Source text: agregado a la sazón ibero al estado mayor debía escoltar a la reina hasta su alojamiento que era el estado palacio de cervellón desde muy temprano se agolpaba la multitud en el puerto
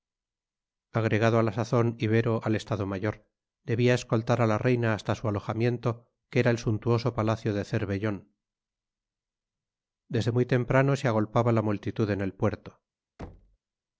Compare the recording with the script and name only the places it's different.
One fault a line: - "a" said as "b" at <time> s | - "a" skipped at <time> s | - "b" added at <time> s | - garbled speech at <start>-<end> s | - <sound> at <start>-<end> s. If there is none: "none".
- "estado" said as "suntuoso" at 6.6 s
- thud at 13.2-13.6 s